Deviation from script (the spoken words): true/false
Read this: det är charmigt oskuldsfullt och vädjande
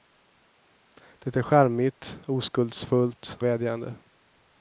true